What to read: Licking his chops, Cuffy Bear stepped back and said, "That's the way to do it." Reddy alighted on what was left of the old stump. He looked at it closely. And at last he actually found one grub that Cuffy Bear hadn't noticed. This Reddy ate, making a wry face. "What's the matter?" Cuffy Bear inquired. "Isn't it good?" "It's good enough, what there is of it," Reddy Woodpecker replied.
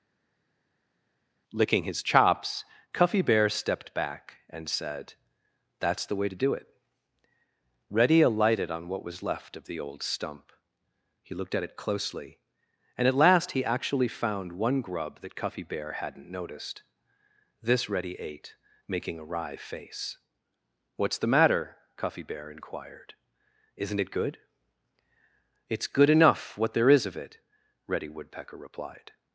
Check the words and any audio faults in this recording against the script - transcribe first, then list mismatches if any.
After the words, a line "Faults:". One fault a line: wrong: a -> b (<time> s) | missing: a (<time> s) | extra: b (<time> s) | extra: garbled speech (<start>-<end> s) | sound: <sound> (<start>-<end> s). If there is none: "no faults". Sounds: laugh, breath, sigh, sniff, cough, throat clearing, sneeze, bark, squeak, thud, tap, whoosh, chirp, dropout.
Licking his chops, Cuffy Bear stepped back and said, "That's the way to do it." Reddy alighted on what was left of the old stump. He looked at it closely. And at last he actually found one grub that Cuffy Bear hadn't noticed. This Reddy ate, making a wry face. "What's the matter?" Cuffy Bear inquired. "Isn't it good?" "It's good enough, what there is of it," Reddy Woodpecker replied.
Faults:
no faults